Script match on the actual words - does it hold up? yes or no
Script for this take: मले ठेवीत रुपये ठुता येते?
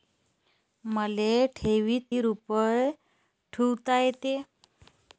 yes